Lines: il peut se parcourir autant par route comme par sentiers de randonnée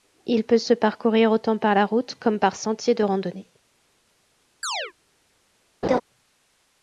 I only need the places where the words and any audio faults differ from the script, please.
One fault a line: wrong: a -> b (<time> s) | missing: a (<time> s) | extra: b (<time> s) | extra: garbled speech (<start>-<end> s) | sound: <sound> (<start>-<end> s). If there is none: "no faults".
extra: la (1.8 s)
sound: chirp (4.6-4.9 s)
sound: laugh (5.8-6.0 s)